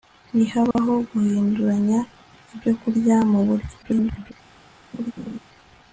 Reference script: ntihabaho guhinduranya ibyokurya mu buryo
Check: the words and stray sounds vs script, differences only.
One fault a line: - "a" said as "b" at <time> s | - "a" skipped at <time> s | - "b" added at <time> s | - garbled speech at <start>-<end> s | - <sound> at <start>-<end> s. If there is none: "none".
- dropout at 0.7-0.8 s
- garbled speech at 3.8-4.3 s
- laugh at 4.9-5.4 s